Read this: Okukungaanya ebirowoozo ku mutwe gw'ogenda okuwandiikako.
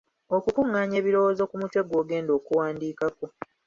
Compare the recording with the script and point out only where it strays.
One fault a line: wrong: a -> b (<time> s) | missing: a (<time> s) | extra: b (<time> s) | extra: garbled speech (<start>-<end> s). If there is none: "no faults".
no faults